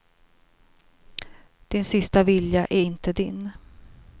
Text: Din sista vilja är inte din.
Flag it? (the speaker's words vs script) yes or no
no